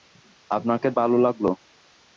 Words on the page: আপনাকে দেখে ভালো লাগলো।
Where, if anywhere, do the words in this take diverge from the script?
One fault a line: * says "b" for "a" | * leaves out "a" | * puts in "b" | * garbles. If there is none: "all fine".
* leaves out "দেখে"